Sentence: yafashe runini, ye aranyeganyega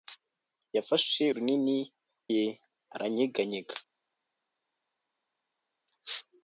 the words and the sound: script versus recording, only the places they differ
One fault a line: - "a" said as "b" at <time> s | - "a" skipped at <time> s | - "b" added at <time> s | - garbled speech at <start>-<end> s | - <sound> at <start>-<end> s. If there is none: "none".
none